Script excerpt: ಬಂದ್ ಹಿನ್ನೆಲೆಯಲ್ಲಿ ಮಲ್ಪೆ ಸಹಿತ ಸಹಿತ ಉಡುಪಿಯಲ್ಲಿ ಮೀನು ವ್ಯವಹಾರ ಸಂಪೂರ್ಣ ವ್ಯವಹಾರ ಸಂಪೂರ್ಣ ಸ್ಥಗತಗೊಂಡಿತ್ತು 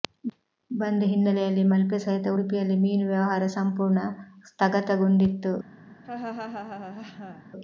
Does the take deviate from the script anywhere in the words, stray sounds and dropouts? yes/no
yes